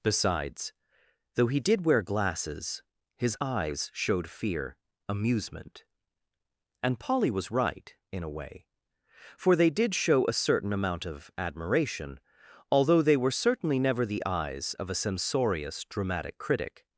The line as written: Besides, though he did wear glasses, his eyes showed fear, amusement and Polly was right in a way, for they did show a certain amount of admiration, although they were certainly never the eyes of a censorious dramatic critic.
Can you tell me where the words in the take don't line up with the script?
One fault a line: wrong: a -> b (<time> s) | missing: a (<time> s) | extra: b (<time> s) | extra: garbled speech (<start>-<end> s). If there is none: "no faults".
no faults